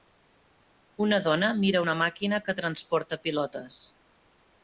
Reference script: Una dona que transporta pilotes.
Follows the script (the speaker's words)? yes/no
no